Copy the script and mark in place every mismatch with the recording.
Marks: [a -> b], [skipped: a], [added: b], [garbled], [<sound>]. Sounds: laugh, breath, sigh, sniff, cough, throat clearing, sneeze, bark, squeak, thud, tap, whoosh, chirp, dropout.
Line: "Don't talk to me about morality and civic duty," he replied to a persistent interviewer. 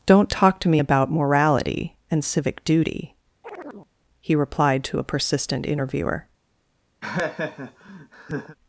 "Don't talk to me about morality and civic duty," [chirp] he replied to a persistent interviewer. [laugh]